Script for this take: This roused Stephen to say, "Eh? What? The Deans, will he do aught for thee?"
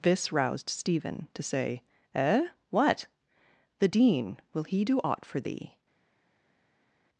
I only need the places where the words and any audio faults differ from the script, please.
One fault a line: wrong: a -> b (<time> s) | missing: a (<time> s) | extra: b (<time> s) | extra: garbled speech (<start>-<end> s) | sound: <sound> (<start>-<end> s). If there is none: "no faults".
wrong: Deans -> Dean (3.9 s)